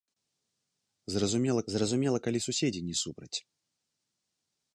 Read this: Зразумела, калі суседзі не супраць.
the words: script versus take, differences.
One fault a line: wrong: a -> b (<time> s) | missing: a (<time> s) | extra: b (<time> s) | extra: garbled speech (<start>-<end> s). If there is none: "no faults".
extra: зразумела (1.7 s)